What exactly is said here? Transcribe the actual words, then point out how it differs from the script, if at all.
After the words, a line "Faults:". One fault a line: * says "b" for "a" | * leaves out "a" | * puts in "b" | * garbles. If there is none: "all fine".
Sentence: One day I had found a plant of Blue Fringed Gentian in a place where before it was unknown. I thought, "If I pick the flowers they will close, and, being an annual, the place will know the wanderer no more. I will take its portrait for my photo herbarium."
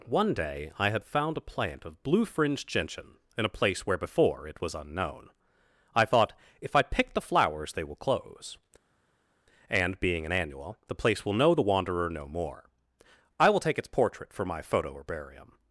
One day I had found a plant of Blue Fringed Gentian in a place where before it was unknown. I thought, "If I pick the flowers they will close, and, being an annual, the place will know the wanderer no more. I will take its portrait for my photo herbarium."
Faults:
all fine